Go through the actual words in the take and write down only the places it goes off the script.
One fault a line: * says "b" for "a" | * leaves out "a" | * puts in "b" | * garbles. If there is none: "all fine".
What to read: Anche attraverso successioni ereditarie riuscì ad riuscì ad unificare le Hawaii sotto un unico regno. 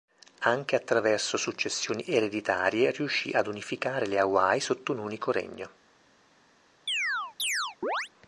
* leaves out "riuscì ad"